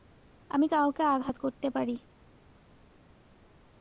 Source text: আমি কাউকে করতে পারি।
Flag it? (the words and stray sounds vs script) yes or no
yes